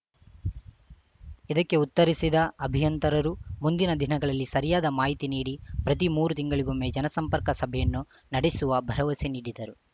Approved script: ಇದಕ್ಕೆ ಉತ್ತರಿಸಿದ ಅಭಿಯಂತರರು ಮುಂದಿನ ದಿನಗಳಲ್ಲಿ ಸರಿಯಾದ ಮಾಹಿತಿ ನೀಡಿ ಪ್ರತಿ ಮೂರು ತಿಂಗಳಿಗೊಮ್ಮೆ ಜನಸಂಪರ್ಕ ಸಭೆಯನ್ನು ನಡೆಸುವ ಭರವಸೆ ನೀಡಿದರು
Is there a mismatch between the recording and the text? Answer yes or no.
no